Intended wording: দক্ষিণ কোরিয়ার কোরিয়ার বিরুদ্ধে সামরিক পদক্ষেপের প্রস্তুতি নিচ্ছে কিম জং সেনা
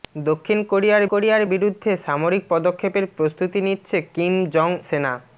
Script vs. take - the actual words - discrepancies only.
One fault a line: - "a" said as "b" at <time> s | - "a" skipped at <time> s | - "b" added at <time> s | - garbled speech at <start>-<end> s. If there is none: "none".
none